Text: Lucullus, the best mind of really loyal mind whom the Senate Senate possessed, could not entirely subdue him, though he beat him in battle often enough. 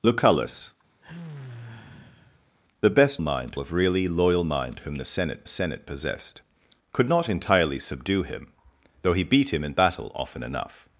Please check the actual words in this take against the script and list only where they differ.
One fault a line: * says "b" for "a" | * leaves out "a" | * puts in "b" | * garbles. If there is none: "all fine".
all fine